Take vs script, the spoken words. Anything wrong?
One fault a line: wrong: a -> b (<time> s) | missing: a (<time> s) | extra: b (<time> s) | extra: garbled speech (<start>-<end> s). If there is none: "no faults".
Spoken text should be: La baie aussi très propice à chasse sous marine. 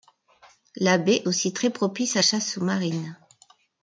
no faults